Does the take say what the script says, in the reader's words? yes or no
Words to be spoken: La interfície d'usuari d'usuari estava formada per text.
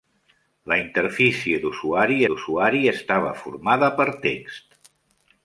yes